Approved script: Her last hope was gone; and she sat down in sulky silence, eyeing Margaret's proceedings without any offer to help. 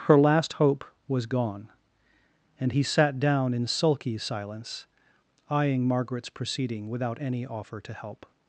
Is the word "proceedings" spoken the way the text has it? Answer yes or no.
no